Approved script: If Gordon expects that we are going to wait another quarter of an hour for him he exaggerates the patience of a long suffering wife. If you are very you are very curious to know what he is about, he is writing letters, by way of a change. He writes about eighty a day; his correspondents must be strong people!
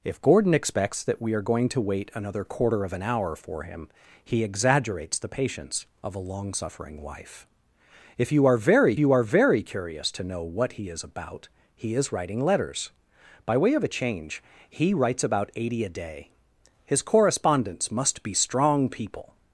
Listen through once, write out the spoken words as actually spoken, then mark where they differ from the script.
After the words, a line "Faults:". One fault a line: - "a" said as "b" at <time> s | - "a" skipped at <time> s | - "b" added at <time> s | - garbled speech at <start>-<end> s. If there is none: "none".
If Gordon expects that we are going to wait another quarter of an hour for him he exaggerates the patience of a long suffering wife. If you are very you are very curious to know what he is about, he is writing letters, by way of a change. He writes about eighty a day; his correspondents must be strong people!
Faults:
none